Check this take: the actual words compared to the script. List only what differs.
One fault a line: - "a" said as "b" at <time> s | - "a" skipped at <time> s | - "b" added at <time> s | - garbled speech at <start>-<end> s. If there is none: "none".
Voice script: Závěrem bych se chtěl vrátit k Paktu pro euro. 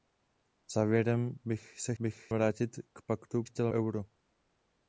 - "chtěl" said as "bych" at 2.0 s
- "pro" said as "chtěl" at 3.4 s